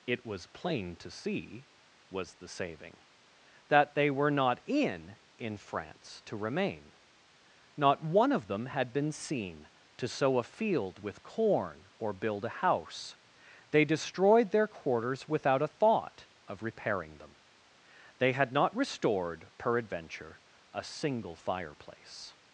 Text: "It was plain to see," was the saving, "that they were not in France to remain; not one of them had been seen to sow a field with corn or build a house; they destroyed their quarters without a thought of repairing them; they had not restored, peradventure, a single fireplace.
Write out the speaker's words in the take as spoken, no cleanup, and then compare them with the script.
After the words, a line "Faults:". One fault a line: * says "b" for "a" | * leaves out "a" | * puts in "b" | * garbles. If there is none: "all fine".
"It was plain to see," was the saving, "that they were not in in France to remain; not one of them had been seen to sow a field with corn or build a house; they destroyed their quarters without a thought of repairing them; they had not restored, peradventure, a single fireplace.
Faults:
* puts in "in"